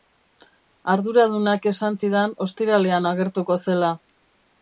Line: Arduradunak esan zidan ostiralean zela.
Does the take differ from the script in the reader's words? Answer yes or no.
yes